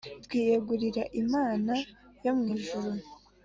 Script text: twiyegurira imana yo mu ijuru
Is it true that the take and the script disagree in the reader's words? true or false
false